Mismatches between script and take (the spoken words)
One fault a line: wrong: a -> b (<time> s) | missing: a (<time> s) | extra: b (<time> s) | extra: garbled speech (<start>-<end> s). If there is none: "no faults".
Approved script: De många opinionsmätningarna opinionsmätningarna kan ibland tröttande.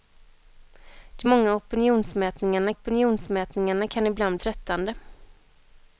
no faults